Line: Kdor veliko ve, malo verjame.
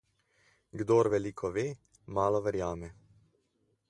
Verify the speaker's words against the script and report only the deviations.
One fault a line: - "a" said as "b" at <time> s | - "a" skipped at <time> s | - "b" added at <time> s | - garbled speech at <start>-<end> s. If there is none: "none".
none